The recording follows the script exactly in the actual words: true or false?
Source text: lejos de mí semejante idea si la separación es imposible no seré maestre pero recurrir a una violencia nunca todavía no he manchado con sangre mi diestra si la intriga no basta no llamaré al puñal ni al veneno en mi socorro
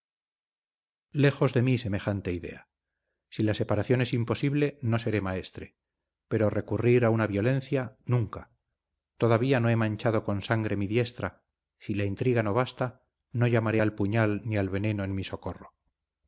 true